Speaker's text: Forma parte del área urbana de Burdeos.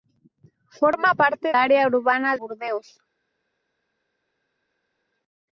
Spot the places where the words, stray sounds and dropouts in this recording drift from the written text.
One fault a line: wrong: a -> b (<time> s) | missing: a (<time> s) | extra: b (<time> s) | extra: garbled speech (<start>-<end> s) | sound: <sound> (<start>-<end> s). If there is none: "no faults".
missing: del (1.5 s)
missing: de (2.4 s)